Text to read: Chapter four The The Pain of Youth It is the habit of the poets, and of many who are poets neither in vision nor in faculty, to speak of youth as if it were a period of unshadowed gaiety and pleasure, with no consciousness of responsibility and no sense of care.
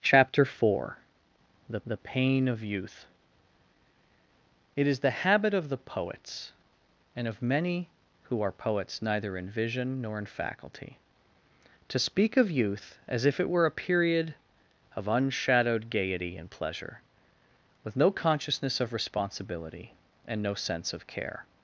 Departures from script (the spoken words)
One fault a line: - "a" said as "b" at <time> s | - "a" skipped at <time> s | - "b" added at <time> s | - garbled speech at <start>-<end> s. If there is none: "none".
none